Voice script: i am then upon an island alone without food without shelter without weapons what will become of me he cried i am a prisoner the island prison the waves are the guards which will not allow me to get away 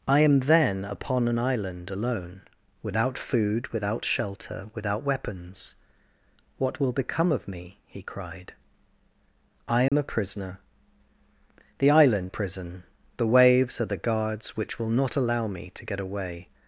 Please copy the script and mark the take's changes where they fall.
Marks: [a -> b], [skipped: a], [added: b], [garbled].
i am then upon an island alone without food without shelter without weapons what will become of me he cried i am a prisoner the island prison the waves are the guards which will not allow me to get away